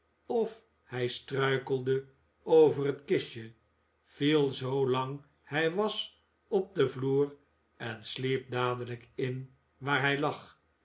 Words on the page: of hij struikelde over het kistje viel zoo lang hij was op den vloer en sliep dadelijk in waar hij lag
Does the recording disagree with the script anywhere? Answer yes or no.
no